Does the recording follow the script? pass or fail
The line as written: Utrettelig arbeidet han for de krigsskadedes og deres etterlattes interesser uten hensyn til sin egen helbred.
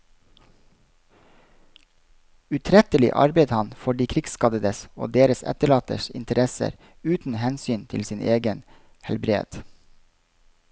pass